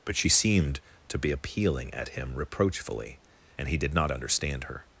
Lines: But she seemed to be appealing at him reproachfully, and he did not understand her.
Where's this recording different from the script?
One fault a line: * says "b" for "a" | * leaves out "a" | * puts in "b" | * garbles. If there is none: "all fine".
all fine